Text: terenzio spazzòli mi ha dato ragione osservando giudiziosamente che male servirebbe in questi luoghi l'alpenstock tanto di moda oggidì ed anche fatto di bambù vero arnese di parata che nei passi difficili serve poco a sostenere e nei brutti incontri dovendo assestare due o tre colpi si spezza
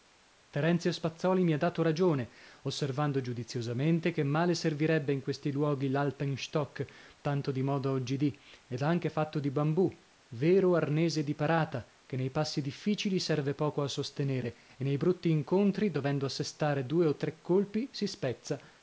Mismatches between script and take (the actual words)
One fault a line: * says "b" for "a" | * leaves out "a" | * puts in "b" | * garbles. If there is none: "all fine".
all fine